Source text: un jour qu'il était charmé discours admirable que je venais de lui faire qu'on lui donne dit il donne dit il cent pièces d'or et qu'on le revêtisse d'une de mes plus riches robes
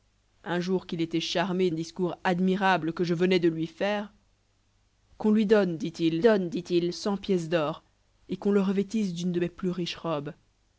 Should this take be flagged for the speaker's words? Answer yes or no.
no